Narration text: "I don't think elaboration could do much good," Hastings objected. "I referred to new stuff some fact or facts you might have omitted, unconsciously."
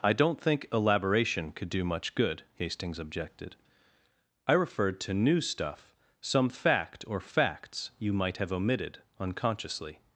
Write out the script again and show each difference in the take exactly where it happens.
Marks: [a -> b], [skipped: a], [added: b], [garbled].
"I don't think elaboration could do much good," Hastings objected. "I referred to new stuff some fact or facts you might have omitted, unconsciously."